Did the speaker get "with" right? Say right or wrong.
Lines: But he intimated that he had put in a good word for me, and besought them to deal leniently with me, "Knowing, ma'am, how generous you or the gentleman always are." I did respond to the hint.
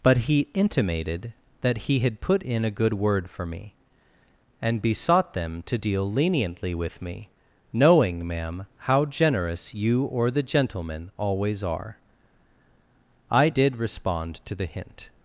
right